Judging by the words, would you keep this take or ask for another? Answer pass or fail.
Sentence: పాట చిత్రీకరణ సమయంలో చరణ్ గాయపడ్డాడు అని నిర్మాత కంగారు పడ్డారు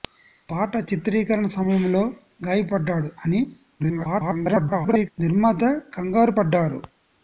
fail